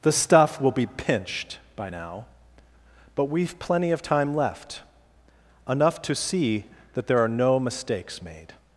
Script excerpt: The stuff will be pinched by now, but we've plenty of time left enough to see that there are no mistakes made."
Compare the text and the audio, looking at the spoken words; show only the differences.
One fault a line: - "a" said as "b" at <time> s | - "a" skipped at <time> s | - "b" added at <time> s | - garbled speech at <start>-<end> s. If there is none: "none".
none